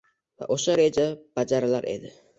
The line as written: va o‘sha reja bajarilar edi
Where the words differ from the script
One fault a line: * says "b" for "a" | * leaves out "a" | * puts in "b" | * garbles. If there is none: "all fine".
all fine